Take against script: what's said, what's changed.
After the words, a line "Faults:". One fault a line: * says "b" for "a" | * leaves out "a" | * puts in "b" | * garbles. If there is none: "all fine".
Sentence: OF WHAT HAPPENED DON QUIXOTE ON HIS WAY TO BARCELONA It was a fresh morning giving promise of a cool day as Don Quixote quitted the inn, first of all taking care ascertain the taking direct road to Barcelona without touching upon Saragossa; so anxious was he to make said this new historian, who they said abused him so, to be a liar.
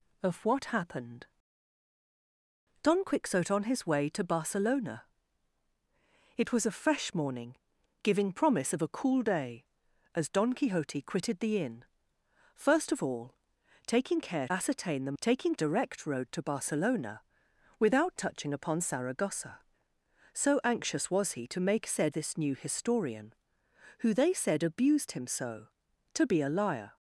OF WHAT HAPPENED DON QUIXOTE ON HIS WAY TO BARCELONA It was a fresh morning giving promise of a cool day as Don Quixote quitted the inn, first of all taking care ascertain the taking direct road to Barcelona without touching upon Saragossa; so anxious was he to make said this new historian, who they said abused him so, to be a liar.
Faults:
all fine